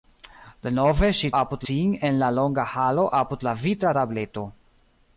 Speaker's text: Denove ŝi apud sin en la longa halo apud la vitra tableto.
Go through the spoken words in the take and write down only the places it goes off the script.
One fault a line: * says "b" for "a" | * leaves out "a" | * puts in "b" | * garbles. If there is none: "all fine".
all fine